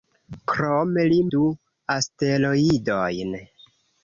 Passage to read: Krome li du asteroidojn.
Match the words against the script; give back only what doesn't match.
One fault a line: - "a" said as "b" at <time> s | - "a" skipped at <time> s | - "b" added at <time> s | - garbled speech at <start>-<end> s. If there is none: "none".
none